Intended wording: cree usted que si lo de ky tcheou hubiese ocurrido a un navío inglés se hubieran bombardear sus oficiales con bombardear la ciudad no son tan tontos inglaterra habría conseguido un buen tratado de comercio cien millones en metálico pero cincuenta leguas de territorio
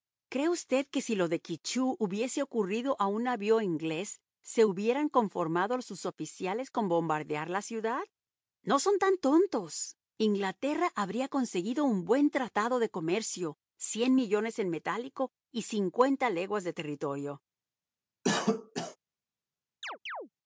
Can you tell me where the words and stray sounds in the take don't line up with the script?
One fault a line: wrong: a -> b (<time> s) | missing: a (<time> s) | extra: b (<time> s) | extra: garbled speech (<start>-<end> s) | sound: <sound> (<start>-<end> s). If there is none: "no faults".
wrong: bombardear -> conformado (5.1 s)
wrong: pero -> y (15.5 s)
sound: cough (18.2-19.0 s)
sound: chirp (19.8-20.3 s)